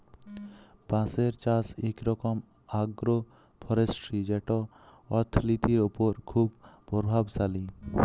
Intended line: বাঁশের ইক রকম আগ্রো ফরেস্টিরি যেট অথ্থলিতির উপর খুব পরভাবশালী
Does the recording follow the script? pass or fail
fail